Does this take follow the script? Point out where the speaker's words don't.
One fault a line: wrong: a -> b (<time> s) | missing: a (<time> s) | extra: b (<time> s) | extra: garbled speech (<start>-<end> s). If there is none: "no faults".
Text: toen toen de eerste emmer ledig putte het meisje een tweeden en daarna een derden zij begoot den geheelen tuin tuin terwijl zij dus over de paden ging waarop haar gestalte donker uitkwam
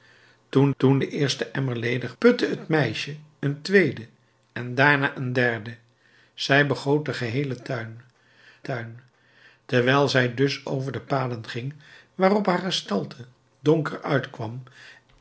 no faults